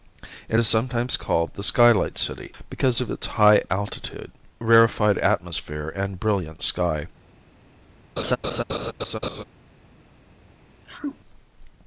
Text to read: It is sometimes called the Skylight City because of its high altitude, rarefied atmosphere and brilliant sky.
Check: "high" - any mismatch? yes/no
no